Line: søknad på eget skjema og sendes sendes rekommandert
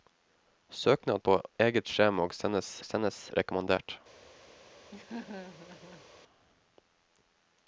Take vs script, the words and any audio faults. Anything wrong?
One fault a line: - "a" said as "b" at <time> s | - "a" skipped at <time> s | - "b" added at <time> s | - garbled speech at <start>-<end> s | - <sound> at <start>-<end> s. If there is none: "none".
- laugh at 4.9-6.1 s